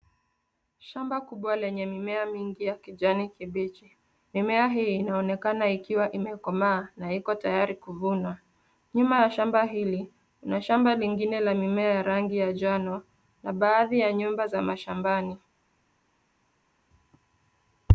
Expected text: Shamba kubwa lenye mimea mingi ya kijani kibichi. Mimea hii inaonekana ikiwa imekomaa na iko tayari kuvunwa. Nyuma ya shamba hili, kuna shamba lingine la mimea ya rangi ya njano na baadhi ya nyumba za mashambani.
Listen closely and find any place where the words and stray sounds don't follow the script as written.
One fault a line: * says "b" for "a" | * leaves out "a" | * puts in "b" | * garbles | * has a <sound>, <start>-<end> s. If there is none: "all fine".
all fine